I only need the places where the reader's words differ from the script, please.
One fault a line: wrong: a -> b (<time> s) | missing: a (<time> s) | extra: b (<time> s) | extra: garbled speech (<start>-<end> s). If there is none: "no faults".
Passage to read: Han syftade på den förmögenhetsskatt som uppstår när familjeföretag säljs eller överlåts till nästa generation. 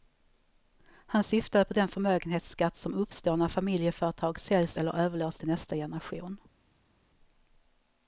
no faults